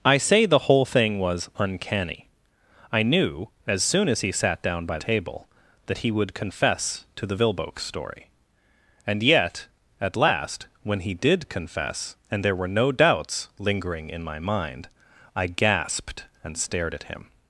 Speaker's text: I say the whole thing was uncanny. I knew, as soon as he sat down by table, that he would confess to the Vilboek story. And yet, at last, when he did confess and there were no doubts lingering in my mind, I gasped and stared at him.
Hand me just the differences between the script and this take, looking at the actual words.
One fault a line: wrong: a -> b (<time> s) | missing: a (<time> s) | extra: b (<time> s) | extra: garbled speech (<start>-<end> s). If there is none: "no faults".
no faults